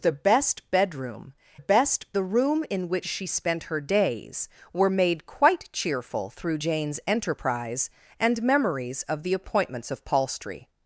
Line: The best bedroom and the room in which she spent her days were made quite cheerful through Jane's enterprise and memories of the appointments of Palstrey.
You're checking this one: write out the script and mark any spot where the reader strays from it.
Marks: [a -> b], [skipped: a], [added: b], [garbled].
The best bedroom [and -> best] the room in which she spent her days were made quite cheerful through Jane's enterprise and memories of the appointments of Palstrey.